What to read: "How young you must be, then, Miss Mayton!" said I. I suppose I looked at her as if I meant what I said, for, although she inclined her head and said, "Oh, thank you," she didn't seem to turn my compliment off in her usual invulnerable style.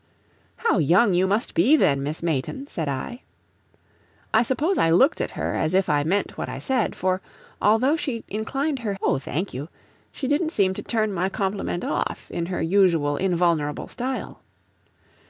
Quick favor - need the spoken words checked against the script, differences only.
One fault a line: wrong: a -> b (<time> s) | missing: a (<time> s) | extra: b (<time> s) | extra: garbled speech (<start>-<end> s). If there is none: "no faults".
missing: head and said (8.9 s)